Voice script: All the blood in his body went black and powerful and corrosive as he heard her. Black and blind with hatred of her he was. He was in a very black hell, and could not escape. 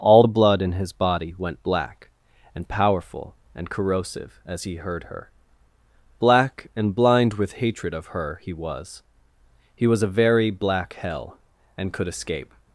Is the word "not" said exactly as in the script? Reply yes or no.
no